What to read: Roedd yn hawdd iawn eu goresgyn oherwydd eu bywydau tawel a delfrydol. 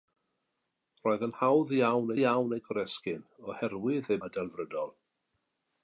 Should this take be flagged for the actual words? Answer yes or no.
yes